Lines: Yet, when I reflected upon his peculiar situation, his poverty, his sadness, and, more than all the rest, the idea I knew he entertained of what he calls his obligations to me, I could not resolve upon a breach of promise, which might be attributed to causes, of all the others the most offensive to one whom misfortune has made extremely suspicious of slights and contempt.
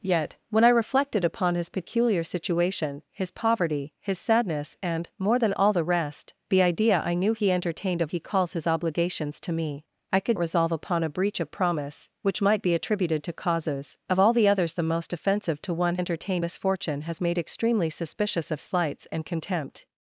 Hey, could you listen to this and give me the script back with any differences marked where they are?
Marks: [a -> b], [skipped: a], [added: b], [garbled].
Yet, when I reflected upon his peculiar situation, his poverty, his sadness, and, more than all the rest, the idea I knew he entertained of [skipped: what] he calls his obligations to me, I could [skipped: not] resolve upon a breach of promise, which might be attributed to causes, of all the others the most offensive to one [whom -> entertained] misfortune has made extremely suspicious of slights and contempt.